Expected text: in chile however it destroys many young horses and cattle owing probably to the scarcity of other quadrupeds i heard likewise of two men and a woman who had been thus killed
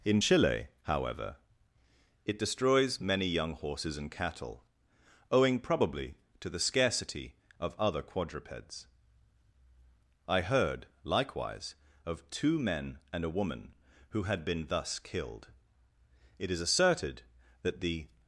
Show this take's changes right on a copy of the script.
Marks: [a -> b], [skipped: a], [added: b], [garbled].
in chile however it destroys many young horses and cattle owing probably to the scarcity of other quadrupeds i heard likewise of two men and a woman who had been thus killed [added: it is asserted that the]